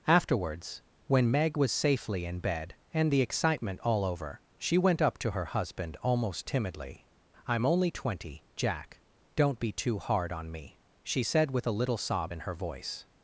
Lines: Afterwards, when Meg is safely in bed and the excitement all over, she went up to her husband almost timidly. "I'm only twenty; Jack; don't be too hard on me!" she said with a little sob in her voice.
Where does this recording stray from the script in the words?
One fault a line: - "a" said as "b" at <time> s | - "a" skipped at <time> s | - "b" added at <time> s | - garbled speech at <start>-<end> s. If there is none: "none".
- "is" said as "was" at 1.6 s